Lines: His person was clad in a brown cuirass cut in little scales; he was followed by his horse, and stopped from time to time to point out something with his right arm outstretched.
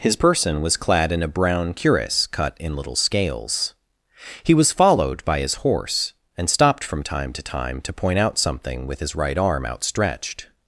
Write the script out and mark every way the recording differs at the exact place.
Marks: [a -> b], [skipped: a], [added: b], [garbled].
His person was clad in a brown cuirass cut in little scales; he was followed by his horse, and stopped from time to time to point out something with his right arm outstretched.